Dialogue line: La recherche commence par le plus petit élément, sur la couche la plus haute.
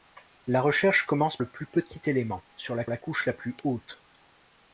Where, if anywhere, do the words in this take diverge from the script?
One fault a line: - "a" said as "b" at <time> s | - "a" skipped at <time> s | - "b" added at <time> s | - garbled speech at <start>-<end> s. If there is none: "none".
- "par" skipped at 1.4 s
- "la" added at 2.9 s